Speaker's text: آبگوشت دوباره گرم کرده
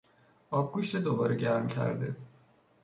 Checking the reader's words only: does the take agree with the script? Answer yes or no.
yes